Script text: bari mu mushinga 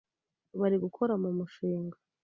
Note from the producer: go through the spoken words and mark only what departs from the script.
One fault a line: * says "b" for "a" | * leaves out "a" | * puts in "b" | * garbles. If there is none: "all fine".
* puts in "gukora"